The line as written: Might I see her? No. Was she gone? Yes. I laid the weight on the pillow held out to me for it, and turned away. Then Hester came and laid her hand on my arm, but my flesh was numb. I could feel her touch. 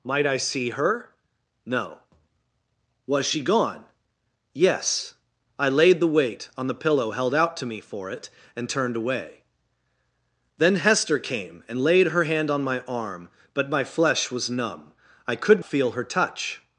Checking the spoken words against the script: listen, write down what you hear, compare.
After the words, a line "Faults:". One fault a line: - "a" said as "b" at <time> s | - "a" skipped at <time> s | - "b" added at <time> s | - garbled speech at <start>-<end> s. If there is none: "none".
Might I see her? No. Was she gone? Yes. I laid the weight on the pillow held out to me for it, and turned away. Then Hester came and laid her hand on my arm, but my flesh was numb. I could feel her touch.
Faults:
none